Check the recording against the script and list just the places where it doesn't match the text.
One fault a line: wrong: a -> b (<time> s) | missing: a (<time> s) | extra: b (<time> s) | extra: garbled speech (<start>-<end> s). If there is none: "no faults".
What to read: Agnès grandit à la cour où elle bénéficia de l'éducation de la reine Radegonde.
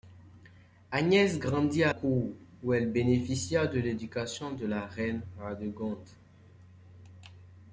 missing: la (1.9 s)